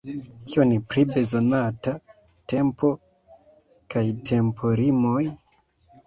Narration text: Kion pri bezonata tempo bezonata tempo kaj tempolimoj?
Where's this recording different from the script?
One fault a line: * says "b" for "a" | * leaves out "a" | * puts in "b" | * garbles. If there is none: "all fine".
* leaves out "bezonata tempo"